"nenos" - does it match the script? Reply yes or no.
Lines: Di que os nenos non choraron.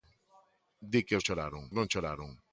no